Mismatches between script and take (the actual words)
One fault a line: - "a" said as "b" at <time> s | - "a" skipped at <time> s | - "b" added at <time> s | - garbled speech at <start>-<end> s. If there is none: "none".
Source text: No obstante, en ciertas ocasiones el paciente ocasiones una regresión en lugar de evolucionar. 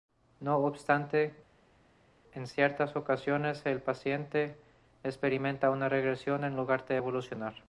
- "ocasiones" said as "experimenta" at 5.0 s